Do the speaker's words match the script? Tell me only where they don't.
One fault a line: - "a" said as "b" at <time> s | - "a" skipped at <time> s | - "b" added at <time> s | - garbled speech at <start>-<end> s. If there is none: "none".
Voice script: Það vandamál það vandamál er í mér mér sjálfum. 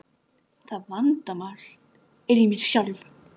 - "það vandamál" skipped at 1.7 s
- "mér" skipped at 2.6 s